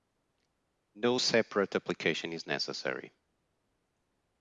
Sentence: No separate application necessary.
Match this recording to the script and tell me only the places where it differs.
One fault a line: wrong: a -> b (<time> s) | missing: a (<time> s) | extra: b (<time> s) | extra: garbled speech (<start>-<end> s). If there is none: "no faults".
extra: is (2.3 s)